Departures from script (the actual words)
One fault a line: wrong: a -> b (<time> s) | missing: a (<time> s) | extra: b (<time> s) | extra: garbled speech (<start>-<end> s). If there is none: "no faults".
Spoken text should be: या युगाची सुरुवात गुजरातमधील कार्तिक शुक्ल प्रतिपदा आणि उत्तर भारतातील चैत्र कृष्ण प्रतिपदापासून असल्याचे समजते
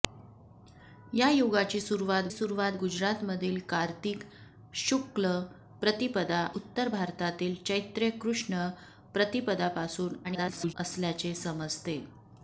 extra: सुरुवात (2.3 s)
missing: आणि (6.4 s)
extra: garbled speech (10.2-10.7 s)